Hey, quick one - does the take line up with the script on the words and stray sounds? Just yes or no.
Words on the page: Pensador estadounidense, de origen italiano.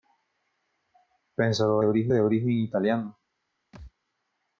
no